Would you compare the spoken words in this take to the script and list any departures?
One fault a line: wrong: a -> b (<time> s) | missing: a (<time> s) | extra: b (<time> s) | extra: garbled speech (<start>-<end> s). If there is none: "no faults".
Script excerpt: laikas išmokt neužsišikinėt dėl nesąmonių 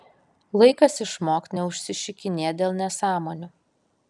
no faults